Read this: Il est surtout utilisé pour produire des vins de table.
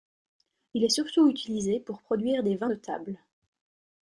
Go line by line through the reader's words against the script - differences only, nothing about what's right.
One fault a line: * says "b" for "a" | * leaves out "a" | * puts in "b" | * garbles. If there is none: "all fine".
all fine